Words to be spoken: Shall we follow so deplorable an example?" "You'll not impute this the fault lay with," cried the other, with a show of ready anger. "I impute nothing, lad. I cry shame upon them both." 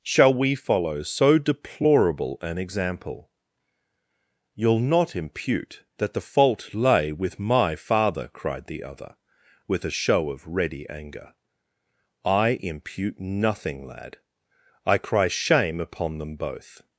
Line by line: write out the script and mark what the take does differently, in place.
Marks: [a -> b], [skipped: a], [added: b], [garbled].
Shall we follow so deplorable an example?" "You'll not impute [this -> that] the fault lay with," [added: my father] cried the other, with a show of ready anger. "I impute nothing, lad. I cry shame upon them both."